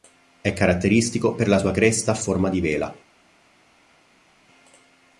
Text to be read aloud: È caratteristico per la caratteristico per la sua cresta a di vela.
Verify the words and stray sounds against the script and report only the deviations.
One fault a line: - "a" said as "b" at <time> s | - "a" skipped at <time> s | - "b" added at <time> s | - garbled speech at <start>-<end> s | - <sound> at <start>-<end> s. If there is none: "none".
- "caratteristico per la" skipped at 1.6 s
- "forma" added at 2.2 s